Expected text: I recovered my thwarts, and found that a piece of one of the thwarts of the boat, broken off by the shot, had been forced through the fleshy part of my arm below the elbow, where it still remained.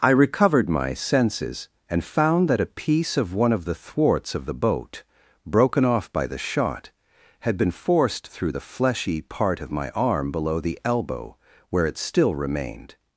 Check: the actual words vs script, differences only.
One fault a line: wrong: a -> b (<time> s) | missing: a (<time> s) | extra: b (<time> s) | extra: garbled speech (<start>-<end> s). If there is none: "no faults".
wrong: thwarts -> senses (0.9 s)